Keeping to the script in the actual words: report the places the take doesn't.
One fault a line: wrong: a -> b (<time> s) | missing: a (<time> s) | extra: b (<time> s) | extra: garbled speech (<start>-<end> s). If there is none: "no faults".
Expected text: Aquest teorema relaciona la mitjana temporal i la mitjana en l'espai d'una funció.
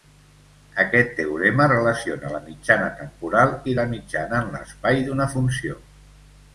no faults